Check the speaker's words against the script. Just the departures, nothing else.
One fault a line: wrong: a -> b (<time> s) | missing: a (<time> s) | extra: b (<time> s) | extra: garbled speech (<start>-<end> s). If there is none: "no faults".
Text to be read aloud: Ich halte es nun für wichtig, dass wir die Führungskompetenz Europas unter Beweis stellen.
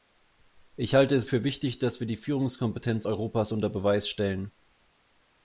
missing: nun (1.3 s)